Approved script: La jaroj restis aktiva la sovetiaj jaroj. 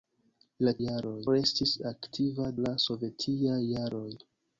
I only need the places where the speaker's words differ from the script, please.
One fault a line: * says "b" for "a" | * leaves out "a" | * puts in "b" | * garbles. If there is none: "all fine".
all fine